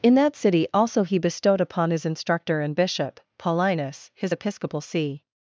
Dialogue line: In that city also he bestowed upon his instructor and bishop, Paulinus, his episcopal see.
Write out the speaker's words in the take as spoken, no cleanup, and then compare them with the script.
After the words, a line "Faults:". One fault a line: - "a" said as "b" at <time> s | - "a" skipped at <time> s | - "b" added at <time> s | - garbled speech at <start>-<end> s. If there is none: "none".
In that city also he bestowed upon his instructor and bishop, Paulinus, his episcopal see.
Faults:
none